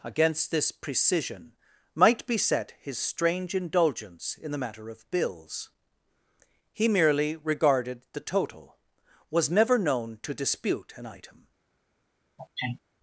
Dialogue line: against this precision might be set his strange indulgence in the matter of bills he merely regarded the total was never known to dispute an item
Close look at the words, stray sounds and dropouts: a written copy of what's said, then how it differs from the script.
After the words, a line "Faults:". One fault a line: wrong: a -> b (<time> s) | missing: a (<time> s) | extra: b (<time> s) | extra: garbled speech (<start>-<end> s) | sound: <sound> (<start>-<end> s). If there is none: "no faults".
against this precision might be set his strange indulgence in the matter of bills he merely regarded the total was never known to dispute an item
Faults:
sound: sneeze (12.4-12.8 s)